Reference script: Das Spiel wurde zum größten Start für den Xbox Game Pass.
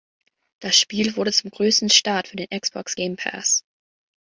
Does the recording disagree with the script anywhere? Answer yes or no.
no